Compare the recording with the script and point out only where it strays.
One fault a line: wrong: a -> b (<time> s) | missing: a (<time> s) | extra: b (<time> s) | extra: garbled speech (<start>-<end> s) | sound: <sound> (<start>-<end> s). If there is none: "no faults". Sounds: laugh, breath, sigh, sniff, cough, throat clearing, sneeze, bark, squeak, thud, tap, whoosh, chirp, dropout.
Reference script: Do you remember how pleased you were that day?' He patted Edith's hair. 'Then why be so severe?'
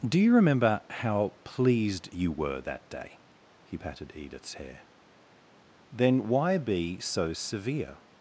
no faults